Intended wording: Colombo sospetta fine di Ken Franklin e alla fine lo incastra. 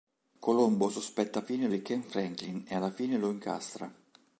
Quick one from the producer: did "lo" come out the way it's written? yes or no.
yes